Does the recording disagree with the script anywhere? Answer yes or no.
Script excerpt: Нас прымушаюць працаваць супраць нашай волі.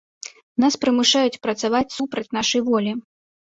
no